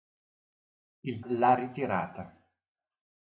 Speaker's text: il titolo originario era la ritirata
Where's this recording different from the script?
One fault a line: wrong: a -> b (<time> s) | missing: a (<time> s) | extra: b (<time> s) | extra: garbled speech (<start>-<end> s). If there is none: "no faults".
missing: titolo originario era (1.2 s)